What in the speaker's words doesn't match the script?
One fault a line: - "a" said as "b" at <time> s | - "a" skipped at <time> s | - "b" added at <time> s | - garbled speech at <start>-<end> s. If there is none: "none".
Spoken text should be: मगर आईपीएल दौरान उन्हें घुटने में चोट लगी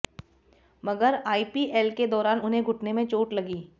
- "के" added at 1.9 s